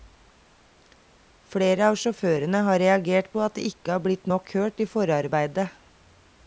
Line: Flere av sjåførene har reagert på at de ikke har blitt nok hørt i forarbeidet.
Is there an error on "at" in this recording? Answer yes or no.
no